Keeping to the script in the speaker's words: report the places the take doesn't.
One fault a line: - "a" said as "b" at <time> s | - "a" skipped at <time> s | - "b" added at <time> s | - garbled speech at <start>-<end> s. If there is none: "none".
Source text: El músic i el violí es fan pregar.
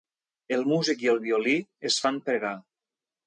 none